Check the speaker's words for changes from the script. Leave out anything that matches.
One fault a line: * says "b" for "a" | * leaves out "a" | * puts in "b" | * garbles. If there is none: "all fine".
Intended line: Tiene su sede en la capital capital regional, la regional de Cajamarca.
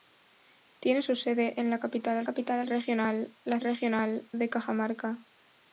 all fine